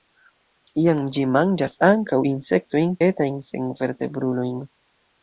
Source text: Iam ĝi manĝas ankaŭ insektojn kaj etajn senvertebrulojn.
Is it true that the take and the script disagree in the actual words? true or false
true